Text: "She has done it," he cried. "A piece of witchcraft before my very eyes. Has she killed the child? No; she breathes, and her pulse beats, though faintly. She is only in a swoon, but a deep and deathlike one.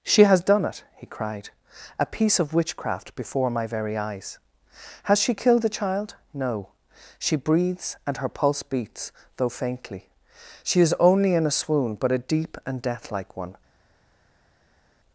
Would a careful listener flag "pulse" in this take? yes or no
no